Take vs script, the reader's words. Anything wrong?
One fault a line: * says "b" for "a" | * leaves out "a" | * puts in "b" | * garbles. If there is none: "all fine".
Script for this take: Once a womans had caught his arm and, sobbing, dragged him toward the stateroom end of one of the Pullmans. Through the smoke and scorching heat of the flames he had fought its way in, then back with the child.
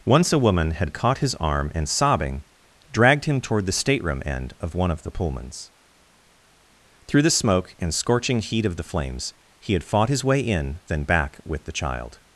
* says "woman" for "womans"
* says "his" for "its"